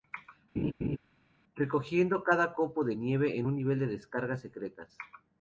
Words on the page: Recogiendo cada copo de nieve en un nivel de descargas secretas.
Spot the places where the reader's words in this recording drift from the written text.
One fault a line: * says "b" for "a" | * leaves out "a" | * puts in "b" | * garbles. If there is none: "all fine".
all fine